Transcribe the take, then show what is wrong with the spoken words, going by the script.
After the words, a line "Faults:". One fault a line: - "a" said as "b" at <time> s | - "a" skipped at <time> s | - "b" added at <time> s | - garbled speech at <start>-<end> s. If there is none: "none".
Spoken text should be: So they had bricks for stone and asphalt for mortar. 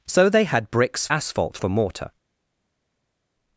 So they had bricks asphalt for mortar.
Faults:
- "for stone and" skipped at 1.1 s